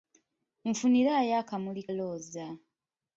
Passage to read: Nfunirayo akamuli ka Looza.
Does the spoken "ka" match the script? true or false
false